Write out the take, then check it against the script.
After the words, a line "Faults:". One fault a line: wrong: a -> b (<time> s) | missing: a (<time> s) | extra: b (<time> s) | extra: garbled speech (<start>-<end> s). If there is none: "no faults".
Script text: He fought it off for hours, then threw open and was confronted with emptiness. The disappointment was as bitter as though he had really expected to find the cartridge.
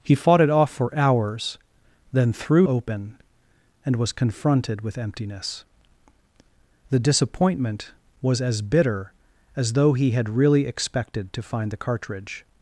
He fought it off for hours, then threw open and was confronted with emptiness. The disappointment was as bitter as though he had really expected to find the cartridge.
Faults:
no faults